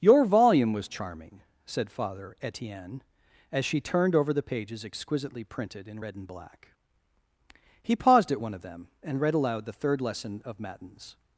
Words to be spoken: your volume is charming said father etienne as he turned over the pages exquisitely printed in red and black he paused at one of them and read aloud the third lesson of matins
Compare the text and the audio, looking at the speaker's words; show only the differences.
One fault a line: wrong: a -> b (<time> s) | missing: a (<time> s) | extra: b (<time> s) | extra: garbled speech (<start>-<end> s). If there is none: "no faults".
wrong: is -> was (0.7 s)
wrong: he -> she (3.6 s)